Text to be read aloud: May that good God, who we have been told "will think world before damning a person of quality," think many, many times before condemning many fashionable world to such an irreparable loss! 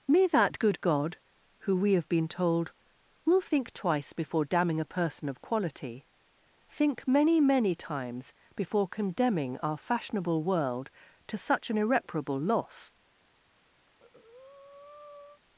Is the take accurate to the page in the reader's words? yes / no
no